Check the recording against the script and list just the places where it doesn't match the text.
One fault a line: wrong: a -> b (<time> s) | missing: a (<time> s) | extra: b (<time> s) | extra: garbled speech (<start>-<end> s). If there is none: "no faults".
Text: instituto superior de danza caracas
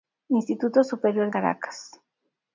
missing: de danza (1.3 s)